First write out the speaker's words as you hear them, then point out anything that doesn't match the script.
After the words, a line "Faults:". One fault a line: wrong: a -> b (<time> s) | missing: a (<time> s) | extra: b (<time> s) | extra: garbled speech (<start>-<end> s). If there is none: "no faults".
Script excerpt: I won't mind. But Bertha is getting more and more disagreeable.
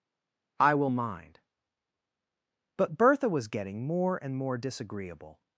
I will mind. But Bertha was getting more and more disagreeable.
Faults:
wrong: won't -> will (0.7 s)
wrong: is -> was (3.3 s)